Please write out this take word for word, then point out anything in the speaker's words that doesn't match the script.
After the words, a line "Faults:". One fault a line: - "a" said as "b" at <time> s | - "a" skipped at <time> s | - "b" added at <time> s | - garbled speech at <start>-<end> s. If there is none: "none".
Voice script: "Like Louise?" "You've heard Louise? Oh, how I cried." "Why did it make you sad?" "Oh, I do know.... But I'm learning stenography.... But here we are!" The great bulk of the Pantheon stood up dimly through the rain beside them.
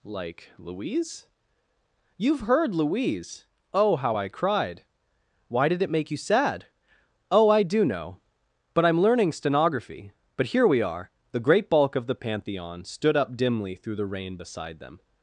"Like Louise?" "You've heard Louise? Oh, how I cried." "Why did it make you sad?" "Oh, I do know.... But I'm learning stenography.... But here we are!" The great bulk of the Pantheon stood up dimly through the rain beside them.
Faults:
none